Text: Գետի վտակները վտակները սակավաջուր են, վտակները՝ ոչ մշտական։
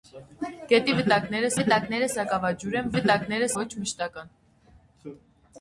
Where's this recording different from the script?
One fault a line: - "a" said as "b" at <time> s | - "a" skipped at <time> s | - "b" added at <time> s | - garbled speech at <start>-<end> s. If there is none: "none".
none